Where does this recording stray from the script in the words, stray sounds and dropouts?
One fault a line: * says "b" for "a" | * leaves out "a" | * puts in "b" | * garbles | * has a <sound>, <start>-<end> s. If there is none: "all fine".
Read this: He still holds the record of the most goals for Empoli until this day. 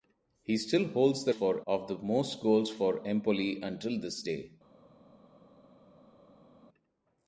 * says "for" for "record"